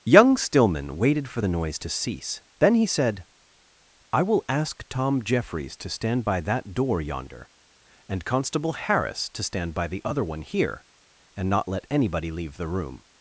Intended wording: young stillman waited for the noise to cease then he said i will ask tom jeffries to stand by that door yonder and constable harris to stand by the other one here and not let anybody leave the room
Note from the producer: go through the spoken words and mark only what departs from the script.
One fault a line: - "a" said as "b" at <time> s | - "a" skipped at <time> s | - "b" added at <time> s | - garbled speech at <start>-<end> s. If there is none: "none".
none